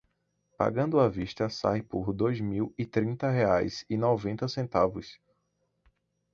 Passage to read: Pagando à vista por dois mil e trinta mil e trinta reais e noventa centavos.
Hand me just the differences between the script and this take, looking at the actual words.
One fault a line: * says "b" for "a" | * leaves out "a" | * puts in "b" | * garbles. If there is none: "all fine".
* puts in "sai"
* leaves out "mil e trinta"